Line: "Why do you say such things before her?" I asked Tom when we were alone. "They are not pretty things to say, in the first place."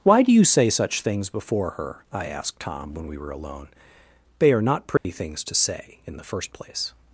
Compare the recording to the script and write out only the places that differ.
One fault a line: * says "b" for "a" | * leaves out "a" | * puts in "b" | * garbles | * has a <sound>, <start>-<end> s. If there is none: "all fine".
* has a dropout, 5.0-5.0 s